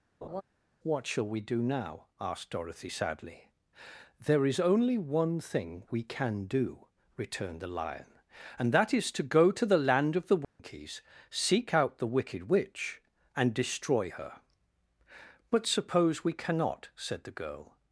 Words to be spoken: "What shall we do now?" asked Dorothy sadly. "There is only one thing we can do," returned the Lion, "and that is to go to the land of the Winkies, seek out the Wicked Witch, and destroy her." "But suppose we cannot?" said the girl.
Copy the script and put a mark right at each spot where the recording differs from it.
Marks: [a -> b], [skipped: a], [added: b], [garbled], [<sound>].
[laugh] "What shall we do now?" asked Dorothy sadly. "There is only one thing we can do," returned the Lion, "and that is to go to the land of the Winkies, [dropout] seek out the Wicked Witch, and destroy her." "But suppose we cannot?" said the girl.